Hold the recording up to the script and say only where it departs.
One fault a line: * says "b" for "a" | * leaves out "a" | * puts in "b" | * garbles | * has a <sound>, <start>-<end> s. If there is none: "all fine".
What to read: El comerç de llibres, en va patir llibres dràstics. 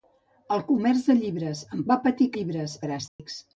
* has a dropout, 3.1-3.2 s